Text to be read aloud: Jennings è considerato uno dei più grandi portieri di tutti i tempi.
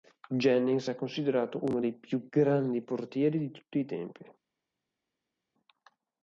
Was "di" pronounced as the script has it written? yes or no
yes